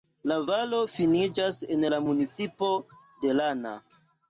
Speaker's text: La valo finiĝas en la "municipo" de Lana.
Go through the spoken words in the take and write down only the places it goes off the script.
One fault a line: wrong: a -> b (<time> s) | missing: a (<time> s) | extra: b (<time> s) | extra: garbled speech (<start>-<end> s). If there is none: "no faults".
no faults